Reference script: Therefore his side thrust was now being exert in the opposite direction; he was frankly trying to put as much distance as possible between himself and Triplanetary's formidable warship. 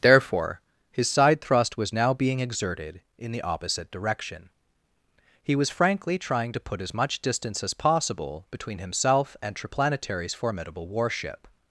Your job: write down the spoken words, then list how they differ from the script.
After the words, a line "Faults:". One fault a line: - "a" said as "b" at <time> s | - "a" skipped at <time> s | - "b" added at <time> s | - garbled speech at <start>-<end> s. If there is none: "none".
Therefore his side thrust was now being exerted in the opposite direction; he was frankly trying to put as much distance as possible between himself and Triplanetary's formidable warship.
Faults:
- "exert" said as "exerted" at 2.4 s